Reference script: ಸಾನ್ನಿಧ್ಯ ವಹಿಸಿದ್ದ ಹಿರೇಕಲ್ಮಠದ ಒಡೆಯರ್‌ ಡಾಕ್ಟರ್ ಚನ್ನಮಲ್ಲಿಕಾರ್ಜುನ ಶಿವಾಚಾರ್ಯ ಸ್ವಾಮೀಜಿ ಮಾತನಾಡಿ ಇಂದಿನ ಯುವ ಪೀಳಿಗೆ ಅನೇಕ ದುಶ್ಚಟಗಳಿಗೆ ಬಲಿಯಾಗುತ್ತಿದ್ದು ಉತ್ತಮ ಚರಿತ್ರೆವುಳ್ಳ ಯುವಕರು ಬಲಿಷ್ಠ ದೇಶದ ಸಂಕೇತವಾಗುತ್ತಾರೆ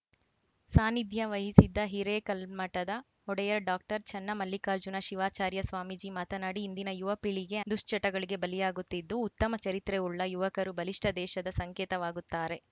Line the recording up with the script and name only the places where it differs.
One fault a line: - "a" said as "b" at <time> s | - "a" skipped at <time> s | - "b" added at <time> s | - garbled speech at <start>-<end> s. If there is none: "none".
- "ಅನೇಕ" skipped at 7.6 s